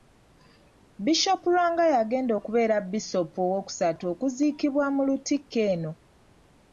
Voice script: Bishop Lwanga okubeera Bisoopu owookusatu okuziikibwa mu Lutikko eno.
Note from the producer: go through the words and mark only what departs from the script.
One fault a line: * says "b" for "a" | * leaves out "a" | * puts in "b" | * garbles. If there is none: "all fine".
* puts in "y'agenda"